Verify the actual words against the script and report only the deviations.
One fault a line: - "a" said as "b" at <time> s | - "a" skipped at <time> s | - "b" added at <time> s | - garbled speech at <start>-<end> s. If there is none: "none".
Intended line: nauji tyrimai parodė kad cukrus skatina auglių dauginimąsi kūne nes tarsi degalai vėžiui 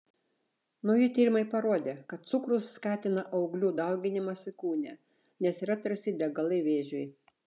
- "yra" added at 5.7 s